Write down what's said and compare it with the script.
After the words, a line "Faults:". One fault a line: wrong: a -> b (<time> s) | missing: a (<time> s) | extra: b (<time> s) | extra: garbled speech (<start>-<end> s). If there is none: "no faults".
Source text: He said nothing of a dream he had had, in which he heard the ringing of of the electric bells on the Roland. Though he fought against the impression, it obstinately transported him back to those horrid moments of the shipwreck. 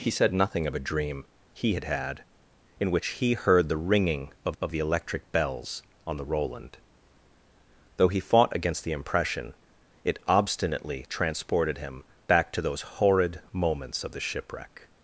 He said nothing of a dream he had had, in which he heard the ringing of of the electric bells on the Roland. Though he fought against the impression, it obstinately transported him back to those horrid moments of the shipwreck.
Faults:
no faults